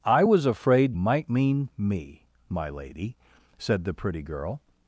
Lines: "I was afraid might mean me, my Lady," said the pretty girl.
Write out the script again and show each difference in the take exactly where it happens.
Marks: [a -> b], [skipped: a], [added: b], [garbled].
"I was afraid might mean me, my Lady," said the pretty girl.